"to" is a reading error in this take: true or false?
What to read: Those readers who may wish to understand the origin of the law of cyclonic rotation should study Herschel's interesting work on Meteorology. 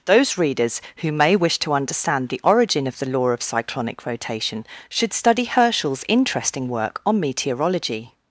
false